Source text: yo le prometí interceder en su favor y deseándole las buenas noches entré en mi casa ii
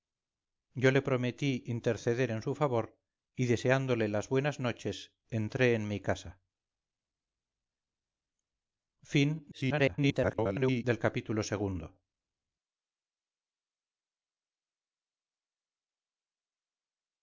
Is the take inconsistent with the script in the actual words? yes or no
yes